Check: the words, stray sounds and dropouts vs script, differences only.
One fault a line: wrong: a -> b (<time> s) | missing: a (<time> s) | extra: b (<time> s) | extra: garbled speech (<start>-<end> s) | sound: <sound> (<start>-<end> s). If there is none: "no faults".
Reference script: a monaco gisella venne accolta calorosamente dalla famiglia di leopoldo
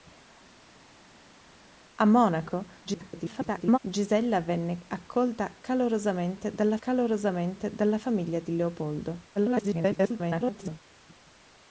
extra: garbled speech (2.8-3.8 s)
extra: calorosamente dalla (6.8 s)
extra: garbled speech (9.4-10.8 s)